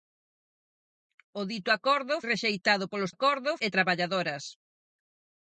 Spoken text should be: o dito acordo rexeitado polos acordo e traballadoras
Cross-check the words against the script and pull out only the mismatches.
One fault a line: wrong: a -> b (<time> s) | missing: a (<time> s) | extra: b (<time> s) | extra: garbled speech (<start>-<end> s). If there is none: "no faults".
no faults